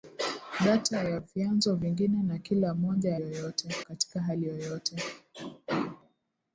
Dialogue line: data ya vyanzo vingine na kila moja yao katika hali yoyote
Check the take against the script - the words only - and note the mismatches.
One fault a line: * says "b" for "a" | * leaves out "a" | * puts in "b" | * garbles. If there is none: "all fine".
* says "yoyote" for "yao"